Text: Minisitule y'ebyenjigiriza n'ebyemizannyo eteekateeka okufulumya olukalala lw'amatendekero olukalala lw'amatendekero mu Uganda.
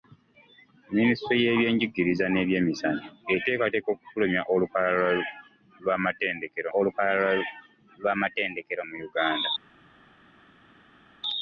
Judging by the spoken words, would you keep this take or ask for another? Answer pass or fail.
pass